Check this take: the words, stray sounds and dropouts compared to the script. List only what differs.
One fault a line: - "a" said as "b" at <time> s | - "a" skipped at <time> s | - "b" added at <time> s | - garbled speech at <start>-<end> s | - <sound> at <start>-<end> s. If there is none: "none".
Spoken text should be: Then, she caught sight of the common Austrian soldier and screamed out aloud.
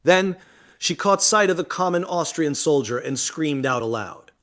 none